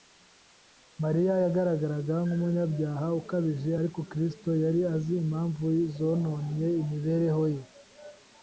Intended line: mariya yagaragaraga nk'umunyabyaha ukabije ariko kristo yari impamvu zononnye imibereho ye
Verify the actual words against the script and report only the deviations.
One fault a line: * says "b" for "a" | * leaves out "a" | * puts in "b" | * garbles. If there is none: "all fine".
* puts in "azi"